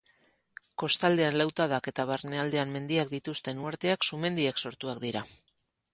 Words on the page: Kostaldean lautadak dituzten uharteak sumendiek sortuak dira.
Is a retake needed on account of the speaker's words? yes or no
yes